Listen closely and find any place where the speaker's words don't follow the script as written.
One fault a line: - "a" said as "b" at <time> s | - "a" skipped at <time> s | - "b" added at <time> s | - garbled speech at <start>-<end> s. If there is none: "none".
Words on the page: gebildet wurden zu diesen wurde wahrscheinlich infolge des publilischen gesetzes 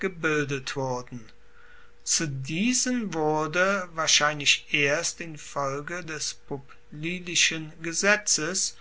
- "erst" added at 4.7 s